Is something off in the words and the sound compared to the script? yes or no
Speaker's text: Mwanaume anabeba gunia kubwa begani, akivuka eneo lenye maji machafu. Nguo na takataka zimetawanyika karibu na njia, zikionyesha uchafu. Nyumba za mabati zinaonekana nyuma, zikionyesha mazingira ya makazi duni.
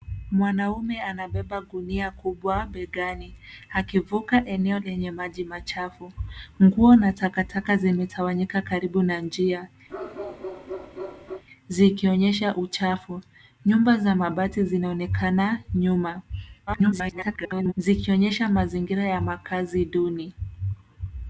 yes